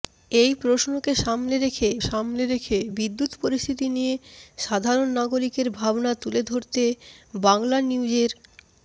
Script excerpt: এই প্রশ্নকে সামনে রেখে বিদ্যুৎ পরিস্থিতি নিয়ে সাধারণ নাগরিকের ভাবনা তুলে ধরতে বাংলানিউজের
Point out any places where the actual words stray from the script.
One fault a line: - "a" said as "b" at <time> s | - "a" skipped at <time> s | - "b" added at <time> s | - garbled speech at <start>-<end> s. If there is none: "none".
- "সামনে রেখে" added at 2.1 s